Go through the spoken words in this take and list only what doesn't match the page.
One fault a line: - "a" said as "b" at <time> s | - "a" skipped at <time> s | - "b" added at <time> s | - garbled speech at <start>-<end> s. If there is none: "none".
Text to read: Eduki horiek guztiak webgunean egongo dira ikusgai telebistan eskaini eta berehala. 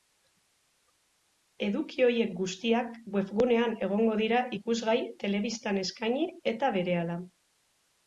none